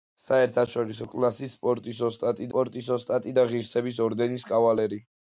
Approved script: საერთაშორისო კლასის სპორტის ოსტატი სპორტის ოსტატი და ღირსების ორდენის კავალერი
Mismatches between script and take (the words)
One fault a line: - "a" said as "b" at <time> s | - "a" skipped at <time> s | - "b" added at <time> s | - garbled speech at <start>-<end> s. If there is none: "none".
none